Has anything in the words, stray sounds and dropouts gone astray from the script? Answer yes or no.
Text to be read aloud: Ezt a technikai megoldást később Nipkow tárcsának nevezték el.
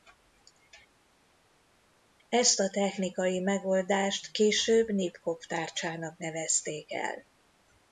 no